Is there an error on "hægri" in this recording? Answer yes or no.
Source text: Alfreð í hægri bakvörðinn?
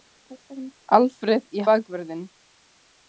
yes